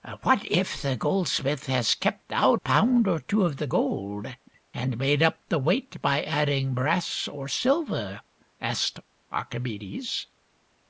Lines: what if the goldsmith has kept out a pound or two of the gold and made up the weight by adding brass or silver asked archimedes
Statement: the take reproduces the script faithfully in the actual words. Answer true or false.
false